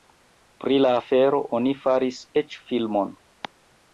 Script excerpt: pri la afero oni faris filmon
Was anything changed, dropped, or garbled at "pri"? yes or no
no